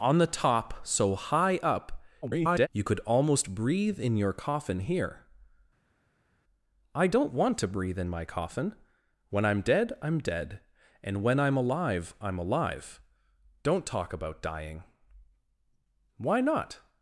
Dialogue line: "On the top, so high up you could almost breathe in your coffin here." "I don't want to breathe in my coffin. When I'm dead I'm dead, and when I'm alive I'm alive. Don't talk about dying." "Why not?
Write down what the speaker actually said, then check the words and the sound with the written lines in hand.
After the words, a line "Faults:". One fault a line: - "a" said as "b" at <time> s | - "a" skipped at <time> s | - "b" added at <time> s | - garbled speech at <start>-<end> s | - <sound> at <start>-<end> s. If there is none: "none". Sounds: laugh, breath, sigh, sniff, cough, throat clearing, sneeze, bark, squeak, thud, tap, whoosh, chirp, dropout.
"On the top, so high up [garbled] you could almost breathe in your coffin here." "I don't want to breathe in my coffin. When I'm dead I'm dead, and when I'm alive I'm alive. Don't talk about dying." "Why not?
Faults:
- garbled speech at 2.2-2.7 s